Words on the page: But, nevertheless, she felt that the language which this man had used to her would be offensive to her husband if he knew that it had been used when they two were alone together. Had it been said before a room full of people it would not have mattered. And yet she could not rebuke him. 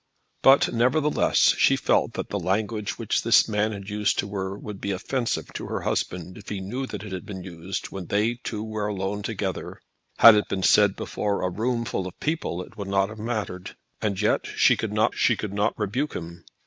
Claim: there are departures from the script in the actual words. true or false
true